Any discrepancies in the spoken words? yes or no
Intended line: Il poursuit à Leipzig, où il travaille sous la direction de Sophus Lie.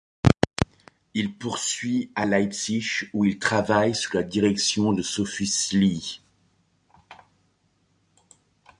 no